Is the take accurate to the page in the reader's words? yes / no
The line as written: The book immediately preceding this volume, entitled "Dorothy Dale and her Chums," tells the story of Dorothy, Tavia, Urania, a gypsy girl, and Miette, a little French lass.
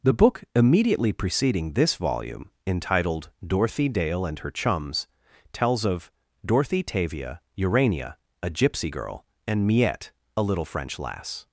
no